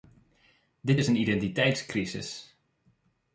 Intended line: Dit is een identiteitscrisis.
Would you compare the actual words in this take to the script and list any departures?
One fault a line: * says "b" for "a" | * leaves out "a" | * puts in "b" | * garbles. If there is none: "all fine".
all fine